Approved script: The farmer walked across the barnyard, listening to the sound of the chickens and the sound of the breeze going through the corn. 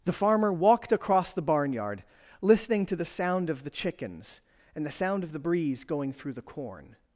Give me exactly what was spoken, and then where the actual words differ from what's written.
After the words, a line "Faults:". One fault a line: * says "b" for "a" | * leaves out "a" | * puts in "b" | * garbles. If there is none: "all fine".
The farmer walked across the barnyard, listening to the sound of the chickens and the sound of the breeze going through the corn.
Faults:
all fine